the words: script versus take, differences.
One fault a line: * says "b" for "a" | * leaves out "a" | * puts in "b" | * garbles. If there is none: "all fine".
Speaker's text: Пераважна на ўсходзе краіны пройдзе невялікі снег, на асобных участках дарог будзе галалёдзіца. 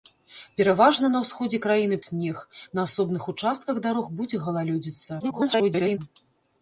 * leaves out "пройдзе невялікі"
* garbles